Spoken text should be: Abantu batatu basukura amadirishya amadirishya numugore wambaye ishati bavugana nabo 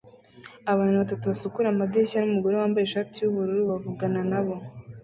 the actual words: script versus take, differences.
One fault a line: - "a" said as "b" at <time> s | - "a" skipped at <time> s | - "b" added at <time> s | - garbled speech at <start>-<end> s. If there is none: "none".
- "amadirishya" skipped at 2.2 s
- "yubururu" added at 3.2 s